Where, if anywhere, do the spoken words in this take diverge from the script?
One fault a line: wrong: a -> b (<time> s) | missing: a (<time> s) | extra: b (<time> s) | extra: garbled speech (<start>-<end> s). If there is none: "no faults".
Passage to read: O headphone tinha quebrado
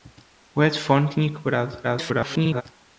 extra: garbled speech (1.8-2.6 s)